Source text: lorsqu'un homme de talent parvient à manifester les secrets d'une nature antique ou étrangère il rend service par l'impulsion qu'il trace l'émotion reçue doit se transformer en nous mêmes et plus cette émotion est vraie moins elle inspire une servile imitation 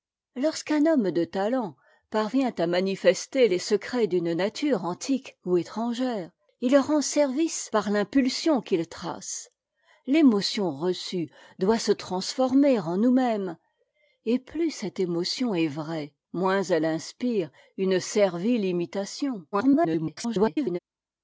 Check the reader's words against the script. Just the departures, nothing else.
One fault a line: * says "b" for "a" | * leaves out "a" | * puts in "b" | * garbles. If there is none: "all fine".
* garbles